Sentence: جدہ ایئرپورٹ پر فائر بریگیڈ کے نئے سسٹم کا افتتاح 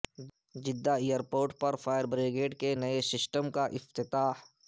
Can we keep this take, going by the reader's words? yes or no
yes